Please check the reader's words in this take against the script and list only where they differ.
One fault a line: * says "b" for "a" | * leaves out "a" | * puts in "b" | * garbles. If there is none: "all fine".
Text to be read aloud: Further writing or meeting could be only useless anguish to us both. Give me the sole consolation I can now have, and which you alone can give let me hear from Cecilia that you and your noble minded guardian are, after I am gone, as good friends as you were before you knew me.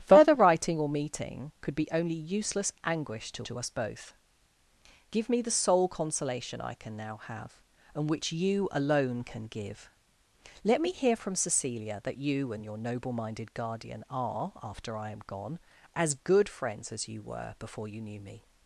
* puts in "to"